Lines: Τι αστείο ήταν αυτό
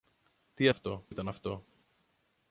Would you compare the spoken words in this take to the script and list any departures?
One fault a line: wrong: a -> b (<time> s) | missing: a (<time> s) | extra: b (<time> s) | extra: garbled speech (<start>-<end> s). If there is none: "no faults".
wrong: αστείο -> αυτό (0.7 s)